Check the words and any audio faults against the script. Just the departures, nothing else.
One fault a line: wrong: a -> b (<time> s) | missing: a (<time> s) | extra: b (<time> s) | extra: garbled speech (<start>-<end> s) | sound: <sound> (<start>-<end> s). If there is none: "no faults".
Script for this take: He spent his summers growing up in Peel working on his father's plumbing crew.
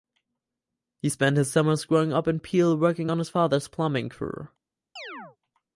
sound: chirp (5.0-5.4 s)